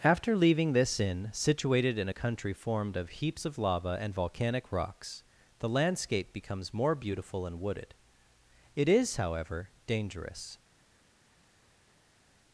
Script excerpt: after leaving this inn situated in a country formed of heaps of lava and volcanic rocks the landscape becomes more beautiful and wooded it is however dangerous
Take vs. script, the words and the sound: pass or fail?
pass